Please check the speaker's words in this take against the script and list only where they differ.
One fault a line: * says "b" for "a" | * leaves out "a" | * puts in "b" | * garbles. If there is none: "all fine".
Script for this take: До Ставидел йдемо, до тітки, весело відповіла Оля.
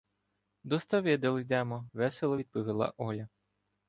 * leaves out "до тітки"